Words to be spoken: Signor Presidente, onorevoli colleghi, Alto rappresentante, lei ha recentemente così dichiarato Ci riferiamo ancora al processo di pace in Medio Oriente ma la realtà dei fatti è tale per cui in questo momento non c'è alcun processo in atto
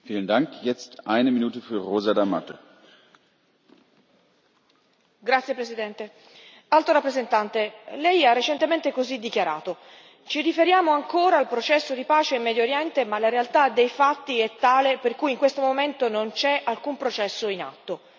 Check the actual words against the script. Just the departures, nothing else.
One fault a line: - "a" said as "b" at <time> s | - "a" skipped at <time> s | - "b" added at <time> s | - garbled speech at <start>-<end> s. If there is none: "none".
none